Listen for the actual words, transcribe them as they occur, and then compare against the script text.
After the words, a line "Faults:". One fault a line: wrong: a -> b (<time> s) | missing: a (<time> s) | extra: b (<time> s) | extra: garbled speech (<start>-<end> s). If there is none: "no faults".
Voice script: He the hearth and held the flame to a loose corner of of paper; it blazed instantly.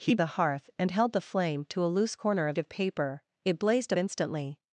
He the hearth and held the flame to a loose corner of of paper; it blazed instantly.
Faults:
no faults